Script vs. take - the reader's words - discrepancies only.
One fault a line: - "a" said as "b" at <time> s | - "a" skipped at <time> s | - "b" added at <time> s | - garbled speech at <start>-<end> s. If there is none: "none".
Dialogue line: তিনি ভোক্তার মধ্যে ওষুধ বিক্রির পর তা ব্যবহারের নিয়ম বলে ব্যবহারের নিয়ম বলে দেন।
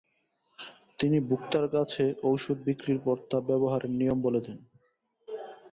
- "মধ্যে" said as "কাছে" at 1.7 s
- "ব্যবহারের নিয়ম বলে" skipped at 4.4 s